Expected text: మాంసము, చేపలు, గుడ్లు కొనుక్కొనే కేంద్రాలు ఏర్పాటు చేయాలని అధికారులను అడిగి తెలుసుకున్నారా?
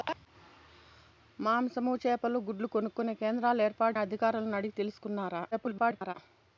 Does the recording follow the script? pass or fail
fail